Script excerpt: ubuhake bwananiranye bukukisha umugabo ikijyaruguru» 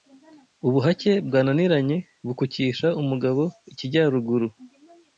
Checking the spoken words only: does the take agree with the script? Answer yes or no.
yes